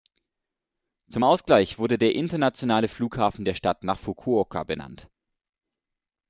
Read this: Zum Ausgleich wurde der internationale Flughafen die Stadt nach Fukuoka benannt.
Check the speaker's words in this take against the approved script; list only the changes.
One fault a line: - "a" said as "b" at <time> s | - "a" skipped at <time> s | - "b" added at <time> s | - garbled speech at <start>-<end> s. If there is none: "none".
- "die" said as "der" at 3.4 s